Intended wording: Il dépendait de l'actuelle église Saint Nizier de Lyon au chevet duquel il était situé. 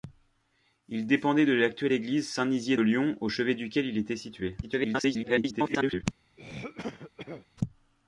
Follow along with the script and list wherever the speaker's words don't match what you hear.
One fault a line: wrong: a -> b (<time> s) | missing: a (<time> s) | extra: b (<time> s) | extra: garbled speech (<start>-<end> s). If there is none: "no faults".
missing: de (2.8 s)
extra: garbled speech (4.6-6.0 s)